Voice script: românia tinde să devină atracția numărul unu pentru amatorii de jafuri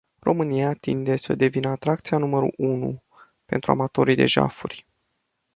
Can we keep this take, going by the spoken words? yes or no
yes